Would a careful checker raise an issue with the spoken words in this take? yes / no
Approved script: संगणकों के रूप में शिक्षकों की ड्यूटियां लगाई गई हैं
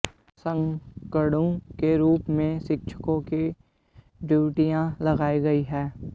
no